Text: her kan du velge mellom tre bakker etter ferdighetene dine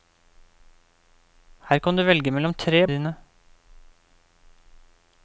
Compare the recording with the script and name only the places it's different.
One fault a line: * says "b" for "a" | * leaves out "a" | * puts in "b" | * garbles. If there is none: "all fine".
* leaves out "bakker etter ferdighetene"